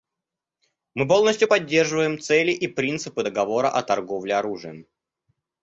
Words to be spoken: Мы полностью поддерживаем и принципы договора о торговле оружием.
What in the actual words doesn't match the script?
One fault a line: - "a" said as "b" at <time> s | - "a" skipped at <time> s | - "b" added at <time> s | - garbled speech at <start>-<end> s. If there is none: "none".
- "цели" added at 2.2 s